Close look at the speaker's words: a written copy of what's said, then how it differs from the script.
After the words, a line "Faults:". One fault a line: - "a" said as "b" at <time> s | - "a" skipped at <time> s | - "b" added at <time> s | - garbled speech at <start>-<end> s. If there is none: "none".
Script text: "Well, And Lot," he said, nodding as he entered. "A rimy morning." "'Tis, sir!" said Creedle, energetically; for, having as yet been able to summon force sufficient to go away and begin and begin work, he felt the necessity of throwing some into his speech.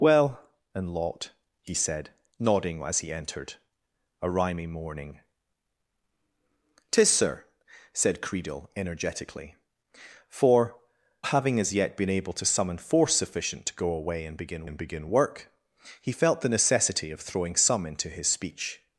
"Well, And Lot," he said, nodding as he entered. "A rimy morning." "'Tis, sir!" said Creedle, energetically; for, having as yet been able to summon force sufficient to go away and begin and begin work, he felt the necessity of throwing some into his speech.
Faults:
none